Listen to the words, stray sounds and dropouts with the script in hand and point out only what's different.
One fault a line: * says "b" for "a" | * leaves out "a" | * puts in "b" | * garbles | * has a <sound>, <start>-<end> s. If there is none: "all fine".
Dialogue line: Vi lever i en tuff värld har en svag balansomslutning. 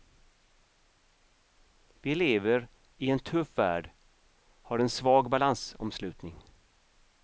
all fine